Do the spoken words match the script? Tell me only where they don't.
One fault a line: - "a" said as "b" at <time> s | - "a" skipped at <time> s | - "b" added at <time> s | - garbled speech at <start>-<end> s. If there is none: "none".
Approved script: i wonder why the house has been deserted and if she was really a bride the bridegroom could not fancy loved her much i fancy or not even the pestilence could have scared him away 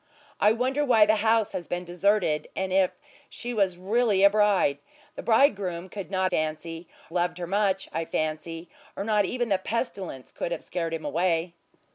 none